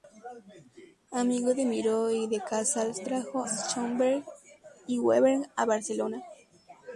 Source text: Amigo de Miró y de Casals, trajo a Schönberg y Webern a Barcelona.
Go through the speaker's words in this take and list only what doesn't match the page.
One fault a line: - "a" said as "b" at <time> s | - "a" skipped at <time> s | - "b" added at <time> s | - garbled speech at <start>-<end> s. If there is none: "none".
- "a" skipped at 3.4 s